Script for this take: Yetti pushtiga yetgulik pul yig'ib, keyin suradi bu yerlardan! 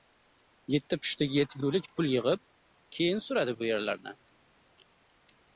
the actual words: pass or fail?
pass